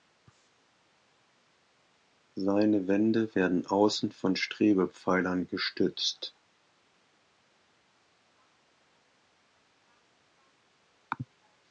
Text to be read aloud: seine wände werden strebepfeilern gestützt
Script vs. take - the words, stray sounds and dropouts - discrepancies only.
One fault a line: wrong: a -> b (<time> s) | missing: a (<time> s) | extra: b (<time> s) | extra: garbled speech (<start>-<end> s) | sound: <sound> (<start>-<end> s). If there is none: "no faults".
extra: außen von (3.7 s)